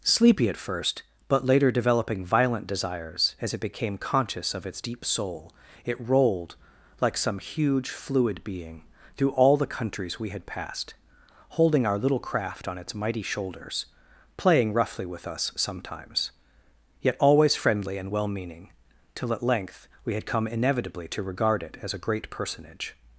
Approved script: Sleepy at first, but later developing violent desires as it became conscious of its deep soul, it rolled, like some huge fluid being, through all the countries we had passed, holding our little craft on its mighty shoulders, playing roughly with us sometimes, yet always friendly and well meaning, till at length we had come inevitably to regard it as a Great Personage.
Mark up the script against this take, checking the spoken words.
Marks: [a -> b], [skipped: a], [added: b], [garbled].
Sleepy at first, but later developing violent desires as it became conscious of its deep soul, it rolled, like some huge fluid being, through all the countries we had passed, holding our little craft on its mighty shoulders, playing roughly with us sometimes, yet always friendly and well meaning, till at length we had come inevitably to regard it as a Great Personage.